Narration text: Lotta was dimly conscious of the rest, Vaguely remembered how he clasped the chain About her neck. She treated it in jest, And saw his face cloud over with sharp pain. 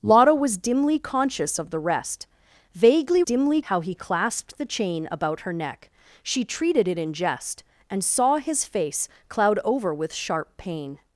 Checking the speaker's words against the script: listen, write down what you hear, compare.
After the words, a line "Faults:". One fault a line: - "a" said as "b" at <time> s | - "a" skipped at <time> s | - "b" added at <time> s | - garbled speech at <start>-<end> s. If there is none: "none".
Lotta was dimly conscious of the rest, Vaguely dimly how he clasped the chain About her neck. She treated it in jest, And saw his face cloud over with sharp pain.
Faults:
- "remembered" said as "dimly" at 3.2 s